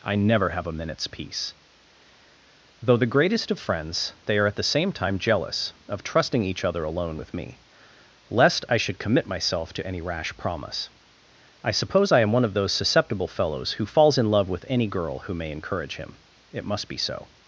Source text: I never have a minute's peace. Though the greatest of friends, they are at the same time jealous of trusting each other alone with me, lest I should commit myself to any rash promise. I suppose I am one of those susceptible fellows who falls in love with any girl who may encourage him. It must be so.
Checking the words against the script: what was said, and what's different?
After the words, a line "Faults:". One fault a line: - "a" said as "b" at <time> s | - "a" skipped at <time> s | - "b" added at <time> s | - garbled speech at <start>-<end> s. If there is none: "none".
I never have a minute's peace. Though the greatest of friends, they are at the same time jealous of trusting each other alone with me, lest I should commit myself to any rash promise. I suppose I am one of those susceptible fellows who falls in love with any girl who may encourage him. It must be so.
Faults:
none